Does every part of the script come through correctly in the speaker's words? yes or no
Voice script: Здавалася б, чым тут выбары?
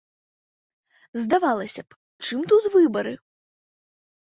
yes